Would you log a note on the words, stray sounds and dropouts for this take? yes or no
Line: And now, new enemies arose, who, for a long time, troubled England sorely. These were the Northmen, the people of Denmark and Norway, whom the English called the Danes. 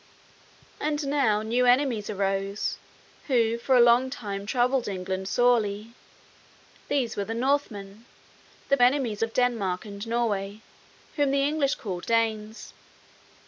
yes